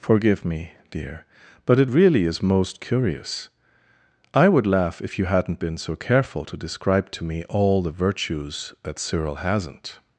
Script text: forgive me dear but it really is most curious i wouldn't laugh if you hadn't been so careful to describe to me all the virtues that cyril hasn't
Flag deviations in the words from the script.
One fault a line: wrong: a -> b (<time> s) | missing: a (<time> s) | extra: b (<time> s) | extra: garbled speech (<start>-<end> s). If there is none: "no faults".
wrong: wouldn't -> would (4.5 s)